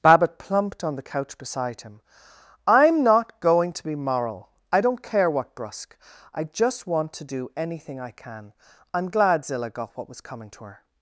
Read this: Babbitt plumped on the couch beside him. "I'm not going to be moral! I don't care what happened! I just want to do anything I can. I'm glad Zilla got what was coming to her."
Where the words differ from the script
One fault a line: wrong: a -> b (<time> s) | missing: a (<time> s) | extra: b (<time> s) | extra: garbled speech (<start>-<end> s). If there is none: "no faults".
wrong: happened -> brusque (5.5 s)